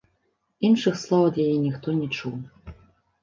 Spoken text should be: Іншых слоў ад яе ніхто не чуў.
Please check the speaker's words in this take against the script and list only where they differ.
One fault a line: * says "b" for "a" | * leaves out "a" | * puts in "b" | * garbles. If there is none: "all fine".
all fine